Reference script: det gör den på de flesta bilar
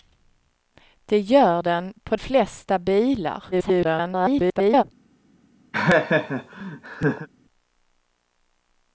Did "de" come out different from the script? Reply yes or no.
yes